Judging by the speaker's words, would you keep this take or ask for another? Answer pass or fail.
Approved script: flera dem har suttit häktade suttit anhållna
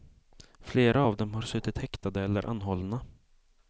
fail